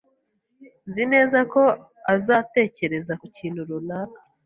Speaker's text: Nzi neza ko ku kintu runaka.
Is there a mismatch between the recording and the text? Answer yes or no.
yes